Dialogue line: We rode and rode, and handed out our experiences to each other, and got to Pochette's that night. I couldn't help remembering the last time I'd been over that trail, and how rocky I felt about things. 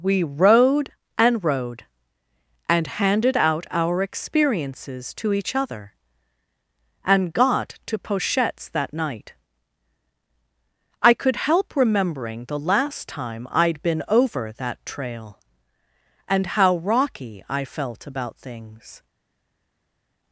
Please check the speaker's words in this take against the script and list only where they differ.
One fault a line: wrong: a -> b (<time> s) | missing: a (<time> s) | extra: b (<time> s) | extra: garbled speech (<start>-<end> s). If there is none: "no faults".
wrong: couldn't -> could (11.1 s)